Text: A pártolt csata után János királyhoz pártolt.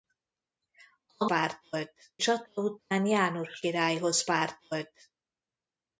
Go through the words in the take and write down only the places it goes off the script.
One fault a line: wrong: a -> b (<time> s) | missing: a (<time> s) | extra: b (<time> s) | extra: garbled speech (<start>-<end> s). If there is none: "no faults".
no faults